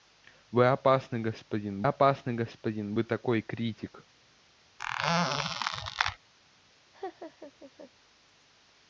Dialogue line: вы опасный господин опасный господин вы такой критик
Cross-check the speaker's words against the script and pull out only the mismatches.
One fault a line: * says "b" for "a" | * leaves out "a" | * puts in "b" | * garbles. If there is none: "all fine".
all fine